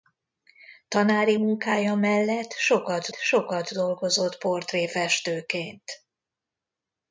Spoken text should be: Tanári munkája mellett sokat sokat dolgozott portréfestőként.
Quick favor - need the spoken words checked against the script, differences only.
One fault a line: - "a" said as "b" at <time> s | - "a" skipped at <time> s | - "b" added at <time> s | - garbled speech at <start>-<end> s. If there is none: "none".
none